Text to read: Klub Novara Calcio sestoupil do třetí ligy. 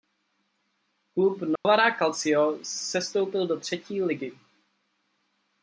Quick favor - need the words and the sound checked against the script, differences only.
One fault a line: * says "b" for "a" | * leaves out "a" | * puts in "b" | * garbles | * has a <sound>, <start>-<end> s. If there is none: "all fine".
* has a dropout, 1.6-1.6 s